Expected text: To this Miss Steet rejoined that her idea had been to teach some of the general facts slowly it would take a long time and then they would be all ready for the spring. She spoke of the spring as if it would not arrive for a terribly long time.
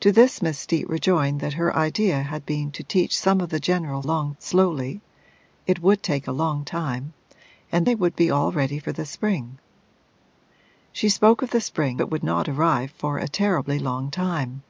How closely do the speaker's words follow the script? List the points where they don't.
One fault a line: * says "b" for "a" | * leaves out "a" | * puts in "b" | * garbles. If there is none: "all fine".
* says "long" for "facts"
* leaves out "then"
* leaves out "as if"